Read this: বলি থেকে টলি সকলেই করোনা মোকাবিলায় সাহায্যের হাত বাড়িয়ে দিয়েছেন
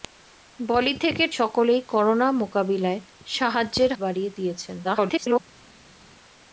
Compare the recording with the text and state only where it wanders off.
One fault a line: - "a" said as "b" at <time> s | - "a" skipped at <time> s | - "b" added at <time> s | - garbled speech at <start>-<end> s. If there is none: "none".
- "টলি" skipped at 1.2 s
- "হাত" skipped at 3.9 s
- garbled speech at 4.8-5.4 s